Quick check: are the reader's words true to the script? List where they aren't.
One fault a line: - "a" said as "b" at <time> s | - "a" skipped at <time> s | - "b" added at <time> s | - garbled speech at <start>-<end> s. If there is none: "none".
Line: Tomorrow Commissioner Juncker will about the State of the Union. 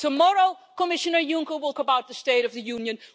none